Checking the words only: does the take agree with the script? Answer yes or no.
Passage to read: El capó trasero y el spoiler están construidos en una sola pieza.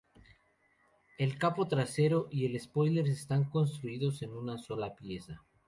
yes